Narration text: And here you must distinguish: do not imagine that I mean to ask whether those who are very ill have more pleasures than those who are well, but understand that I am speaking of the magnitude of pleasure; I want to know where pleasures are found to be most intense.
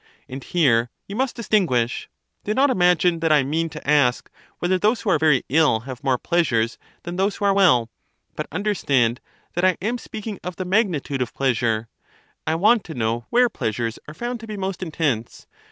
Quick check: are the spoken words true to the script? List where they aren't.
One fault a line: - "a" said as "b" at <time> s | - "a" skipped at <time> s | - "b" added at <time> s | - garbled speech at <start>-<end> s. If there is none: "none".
none